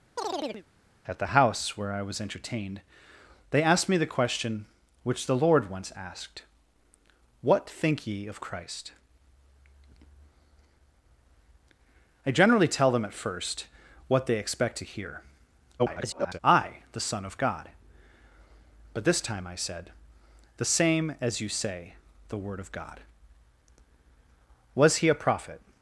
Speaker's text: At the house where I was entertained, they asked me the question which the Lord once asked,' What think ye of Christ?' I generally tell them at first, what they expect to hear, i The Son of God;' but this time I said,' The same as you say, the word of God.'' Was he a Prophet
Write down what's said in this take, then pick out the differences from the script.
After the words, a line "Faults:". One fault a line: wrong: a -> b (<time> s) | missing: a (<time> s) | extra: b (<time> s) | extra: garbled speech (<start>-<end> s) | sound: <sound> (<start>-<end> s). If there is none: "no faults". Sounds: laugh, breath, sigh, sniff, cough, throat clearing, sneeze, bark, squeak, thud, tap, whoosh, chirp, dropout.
At the house where I was entertained, they asked me the question which the Lord once asked,' What think ye of Christ?' I generally tell them at first, what they expect to hear, [garbled] i The Son of God;' but this time I said,' The same as you say, the word of God.'' Was he a Prophet
Faults:
sound: chirp (0.2-0.7 s)
extra: garbled speech (15.8-16.4 s)